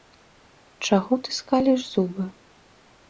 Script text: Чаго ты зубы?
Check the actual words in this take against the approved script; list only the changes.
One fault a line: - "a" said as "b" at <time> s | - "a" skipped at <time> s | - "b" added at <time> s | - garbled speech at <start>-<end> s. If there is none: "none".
- "скаліш" added at 1.4 s